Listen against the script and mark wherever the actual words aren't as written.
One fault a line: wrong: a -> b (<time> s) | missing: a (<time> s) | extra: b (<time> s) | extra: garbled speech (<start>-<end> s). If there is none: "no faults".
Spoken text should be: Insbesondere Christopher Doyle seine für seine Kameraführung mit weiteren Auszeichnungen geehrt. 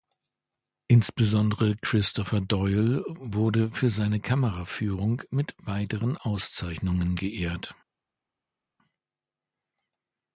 wrong: seine -> wurde (3.1 s)